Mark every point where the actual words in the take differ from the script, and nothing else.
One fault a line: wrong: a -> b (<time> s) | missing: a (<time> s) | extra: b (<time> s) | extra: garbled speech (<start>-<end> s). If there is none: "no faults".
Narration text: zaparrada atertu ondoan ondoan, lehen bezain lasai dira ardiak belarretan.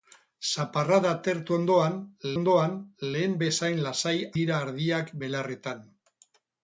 no faults